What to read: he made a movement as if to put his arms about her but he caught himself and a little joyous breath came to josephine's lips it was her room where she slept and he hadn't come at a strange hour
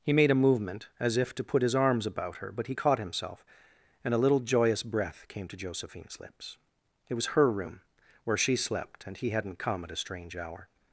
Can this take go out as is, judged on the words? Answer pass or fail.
pass